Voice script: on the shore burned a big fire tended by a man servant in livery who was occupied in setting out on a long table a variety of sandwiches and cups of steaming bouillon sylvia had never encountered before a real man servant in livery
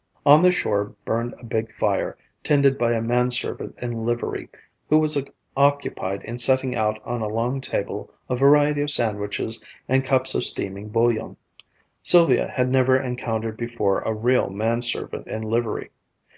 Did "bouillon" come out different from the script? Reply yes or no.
no